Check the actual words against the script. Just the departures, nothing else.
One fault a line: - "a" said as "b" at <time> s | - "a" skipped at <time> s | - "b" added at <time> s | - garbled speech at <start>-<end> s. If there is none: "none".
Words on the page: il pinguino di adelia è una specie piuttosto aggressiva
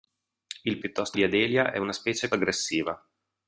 - "pinguino" said as "piuttosto" at 0.8 s
- "piuttosto" skipped at 2.3 s